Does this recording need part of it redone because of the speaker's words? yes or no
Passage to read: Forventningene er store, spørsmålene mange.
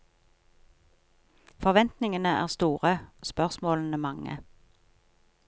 no